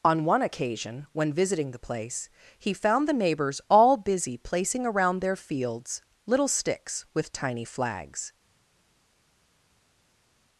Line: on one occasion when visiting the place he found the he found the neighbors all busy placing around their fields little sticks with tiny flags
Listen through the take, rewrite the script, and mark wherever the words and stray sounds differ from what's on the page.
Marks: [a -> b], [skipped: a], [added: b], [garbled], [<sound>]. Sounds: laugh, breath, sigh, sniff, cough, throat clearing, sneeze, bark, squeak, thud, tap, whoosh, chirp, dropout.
on one occasion when visiting the place he found the [skipped: he found the] neighbors all busy placing around their fields little sticks with tiny flags